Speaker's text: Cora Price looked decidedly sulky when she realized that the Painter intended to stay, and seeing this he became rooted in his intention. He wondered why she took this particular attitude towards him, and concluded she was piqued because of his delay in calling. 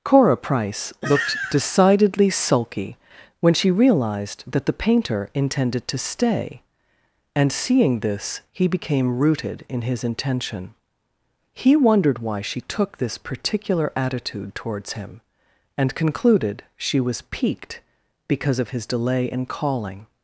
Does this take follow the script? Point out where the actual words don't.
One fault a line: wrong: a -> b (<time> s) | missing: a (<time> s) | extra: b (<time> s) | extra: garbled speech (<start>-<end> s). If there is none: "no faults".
no faults